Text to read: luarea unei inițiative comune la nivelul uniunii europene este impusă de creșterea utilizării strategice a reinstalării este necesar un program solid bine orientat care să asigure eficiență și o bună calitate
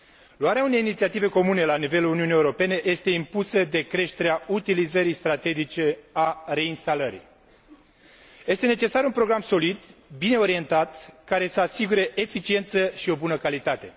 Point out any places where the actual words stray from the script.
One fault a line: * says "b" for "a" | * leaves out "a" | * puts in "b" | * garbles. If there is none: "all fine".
all fine